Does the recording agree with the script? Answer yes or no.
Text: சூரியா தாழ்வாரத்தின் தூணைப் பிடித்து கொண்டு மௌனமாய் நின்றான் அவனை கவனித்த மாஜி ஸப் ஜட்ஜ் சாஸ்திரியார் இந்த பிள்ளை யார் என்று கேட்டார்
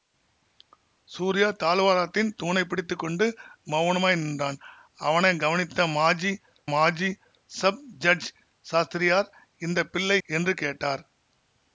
no